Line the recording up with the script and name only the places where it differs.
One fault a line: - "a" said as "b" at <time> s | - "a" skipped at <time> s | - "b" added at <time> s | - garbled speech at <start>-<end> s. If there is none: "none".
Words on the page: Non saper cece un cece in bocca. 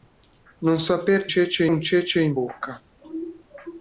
none